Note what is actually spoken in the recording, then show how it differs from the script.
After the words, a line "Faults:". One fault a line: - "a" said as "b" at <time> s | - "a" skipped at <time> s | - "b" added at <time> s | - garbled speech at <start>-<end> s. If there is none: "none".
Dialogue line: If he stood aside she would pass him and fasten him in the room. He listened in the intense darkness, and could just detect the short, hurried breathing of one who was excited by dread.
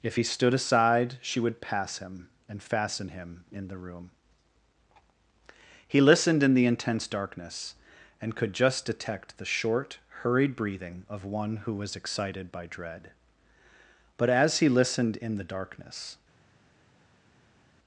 If he stood aside she would pass him and fasten him in the room. He listened in the intense darkness, and could just detect the short, hurried breathing of one who was excited by dread. But as he listened in the darkness
Faults:
- "But as he listened in the darkness" added at 14.2 s